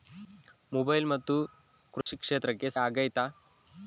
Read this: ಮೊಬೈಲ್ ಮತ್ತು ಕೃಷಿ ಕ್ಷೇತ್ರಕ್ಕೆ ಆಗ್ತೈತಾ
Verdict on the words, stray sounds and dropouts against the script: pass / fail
fail